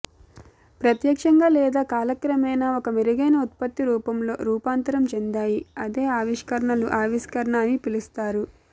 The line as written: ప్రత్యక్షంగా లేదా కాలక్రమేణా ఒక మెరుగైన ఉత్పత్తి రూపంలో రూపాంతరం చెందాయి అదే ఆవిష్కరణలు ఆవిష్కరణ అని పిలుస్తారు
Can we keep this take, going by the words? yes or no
yes